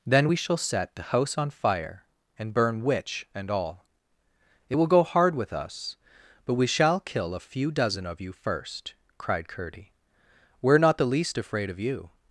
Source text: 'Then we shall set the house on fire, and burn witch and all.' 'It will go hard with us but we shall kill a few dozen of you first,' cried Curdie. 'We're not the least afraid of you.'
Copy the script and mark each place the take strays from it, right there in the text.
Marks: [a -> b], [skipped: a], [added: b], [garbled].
'Then we shall set the house on fire, and burn witch and all.' 'It will go hard with us but we shall kill a few dozen of you first,' cried Curdie. 'We're not the least afraid of you.'